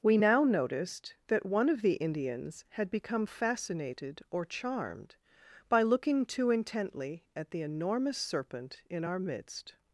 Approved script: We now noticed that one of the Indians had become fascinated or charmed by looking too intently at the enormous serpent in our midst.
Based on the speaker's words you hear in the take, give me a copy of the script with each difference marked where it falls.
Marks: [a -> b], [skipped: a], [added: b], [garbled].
We now noticed that one of the Indians had become fascinated or charmed by looking too intently at the enormous serpent in our midst.